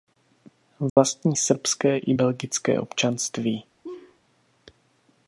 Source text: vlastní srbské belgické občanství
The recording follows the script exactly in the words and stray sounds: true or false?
false